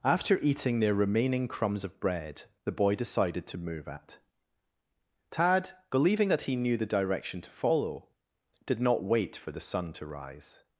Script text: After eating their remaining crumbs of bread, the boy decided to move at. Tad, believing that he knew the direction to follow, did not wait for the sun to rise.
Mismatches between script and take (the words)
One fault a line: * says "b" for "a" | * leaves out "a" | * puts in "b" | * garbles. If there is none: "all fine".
all fine